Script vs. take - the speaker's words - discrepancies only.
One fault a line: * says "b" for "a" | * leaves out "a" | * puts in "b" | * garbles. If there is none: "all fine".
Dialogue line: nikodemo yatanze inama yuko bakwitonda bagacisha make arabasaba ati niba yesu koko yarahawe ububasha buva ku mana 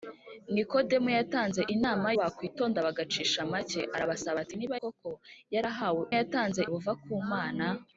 * leaves out "yuko"
* leaves out "yesu"
* says "yatanze" for "ububasha"